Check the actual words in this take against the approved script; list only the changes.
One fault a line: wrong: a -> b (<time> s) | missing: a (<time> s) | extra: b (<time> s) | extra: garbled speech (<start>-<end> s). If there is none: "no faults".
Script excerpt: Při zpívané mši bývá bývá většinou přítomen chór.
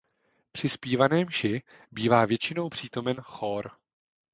missing: bývá (2.2 s)